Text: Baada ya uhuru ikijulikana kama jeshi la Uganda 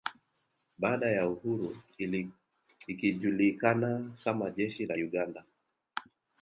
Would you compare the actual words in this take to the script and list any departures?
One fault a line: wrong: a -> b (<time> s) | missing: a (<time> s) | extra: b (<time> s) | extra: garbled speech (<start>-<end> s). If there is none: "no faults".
no faults